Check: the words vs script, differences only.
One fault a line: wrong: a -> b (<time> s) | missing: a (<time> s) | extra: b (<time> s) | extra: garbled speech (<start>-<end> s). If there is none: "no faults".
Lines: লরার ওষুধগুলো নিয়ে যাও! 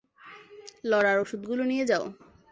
no faults